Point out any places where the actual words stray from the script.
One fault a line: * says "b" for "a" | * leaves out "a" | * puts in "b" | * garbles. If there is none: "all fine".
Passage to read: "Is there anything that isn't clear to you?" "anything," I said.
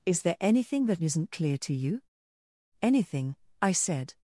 all fine